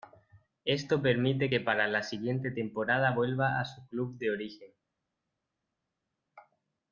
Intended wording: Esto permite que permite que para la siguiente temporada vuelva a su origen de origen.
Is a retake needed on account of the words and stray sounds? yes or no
yes